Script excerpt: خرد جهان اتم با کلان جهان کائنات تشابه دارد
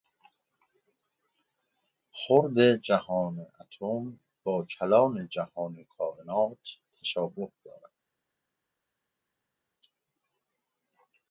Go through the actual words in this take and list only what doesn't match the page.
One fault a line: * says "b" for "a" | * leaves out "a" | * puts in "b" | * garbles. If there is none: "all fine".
all fine